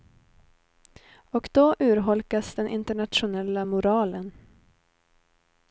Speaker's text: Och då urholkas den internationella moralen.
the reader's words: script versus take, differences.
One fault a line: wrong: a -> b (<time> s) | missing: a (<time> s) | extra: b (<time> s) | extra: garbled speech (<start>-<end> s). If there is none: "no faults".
no faults